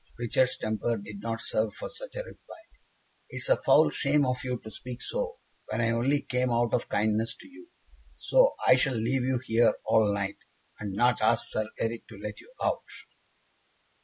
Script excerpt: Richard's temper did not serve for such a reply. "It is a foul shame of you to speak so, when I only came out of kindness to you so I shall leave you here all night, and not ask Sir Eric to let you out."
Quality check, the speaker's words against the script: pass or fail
pass